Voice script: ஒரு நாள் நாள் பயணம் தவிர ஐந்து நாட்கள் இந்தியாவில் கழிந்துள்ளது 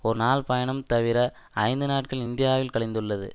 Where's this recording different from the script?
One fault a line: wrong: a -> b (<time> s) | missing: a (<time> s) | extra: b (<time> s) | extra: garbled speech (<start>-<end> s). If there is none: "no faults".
missing: நாள் (0.5 s)